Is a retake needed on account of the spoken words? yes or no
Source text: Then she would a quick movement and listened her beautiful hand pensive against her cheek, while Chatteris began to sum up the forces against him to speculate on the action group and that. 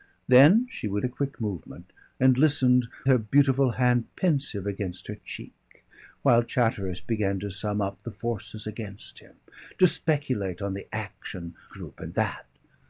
no